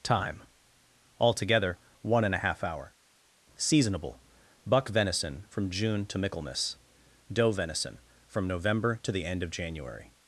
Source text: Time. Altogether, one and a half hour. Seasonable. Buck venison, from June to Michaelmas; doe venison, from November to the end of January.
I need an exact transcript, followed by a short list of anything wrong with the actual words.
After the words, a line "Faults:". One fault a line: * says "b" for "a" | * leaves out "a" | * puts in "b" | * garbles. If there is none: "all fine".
Time. Altogether, one and a half hour. Seasonable. Buck venison, from June to Michaelmas; doe venison, from November to the end of January.
Faults:
all fine